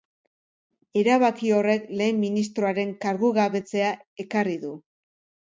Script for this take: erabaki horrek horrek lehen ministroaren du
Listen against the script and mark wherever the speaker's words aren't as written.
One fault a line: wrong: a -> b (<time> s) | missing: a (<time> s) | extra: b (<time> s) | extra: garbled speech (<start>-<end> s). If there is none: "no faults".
missing: horrek (1.9 s)
extra: kargugabetzea ekarri (3.0 s)